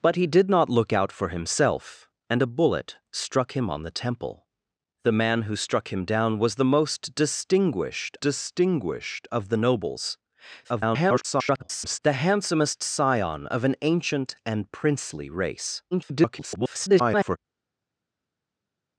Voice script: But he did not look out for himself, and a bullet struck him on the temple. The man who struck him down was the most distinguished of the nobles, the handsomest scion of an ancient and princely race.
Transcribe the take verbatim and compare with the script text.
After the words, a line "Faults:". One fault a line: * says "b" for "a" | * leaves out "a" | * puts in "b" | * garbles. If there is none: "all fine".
But he did not look out for himself, and a bullet struck him on the temple. The man who struck him down was the most distinguished distinguished of the nobles, [garbled] the handsomest scion of an ancient and princely race. [garbled]
Faults:
* puts in "distinguished"
* garbles
* garbles